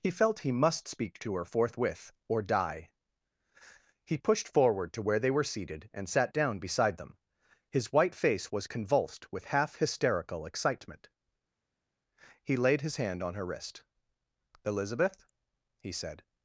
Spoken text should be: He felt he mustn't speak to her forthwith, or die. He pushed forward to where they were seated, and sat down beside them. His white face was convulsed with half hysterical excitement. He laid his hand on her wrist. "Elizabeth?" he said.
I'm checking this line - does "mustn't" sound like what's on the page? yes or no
no